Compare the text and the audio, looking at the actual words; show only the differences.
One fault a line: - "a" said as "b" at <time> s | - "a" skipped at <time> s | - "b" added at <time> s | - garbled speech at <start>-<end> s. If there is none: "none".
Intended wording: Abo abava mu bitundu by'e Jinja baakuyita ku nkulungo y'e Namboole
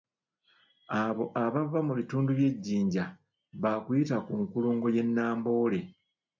none